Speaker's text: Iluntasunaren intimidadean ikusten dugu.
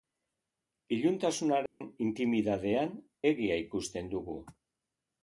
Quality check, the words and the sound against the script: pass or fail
fail